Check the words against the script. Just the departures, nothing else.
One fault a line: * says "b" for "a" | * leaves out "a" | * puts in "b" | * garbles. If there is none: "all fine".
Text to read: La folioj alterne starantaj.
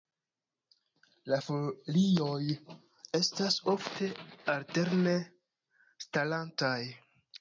* puts in "estas ofte"